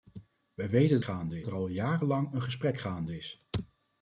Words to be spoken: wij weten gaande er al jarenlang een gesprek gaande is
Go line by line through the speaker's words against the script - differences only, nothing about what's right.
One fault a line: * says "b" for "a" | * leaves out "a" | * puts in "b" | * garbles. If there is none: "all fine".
all fine